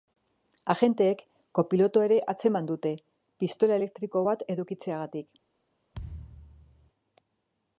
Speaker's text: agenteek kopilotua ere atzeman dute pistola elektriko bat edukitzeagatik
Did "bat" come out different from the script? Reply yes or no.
no